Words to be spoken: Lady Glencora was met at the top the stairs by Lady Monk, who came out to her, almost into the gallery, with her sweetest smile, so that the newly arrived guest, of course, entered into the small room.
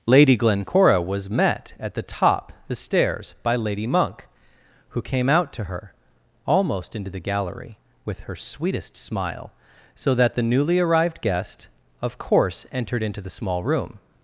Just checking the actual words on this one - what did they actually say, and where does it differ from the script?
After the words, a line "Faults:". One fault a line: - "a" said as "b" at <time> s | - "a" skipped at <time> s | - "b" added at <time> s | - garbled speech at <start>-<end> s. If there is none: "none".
Lady Glencora was met at the top the stairs by Lady Monk, who came out to her, almost into the gallery, with her sweetest smile, so that the newly arrived guest, of course, entered into the small room.
Faults:
none